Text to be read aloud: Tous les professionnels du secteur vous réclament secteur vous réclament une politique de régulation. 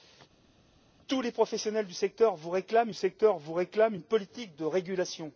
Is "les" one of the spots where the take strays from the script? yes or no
no